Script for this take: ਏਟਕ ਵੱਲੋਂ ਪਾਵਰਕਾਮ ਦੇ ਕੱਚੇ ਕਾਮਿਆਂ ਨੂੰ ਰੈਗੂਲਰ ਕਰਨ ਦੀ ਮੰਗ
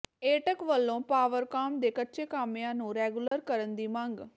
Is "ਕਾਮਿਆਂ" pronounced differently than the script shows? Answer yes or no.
no